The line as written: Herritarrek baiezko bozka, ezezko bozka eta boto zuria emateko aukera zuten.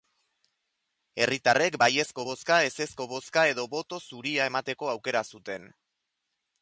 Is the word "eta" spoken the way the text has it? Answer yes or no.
no